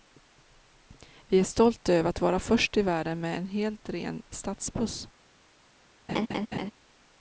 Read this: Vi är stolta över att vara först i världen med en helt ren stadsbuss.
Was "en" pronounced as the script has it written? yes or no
yes